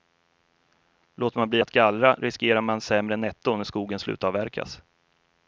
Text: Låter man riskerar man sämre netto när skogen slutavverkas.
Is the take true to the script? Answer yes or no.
no